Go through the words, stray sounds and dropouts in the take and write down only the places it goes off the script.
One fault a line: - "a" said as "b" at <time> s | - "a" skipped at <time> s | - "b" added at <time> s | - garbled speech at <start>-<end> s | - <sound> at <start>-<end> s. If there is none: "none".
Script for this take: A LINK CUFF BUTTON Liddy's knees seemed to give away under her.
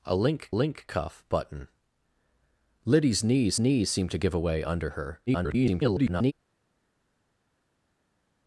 - "LINK" added at 0.5 s
- "knees" added at 3.6 s
- garbled speech at 5.3-6.3 s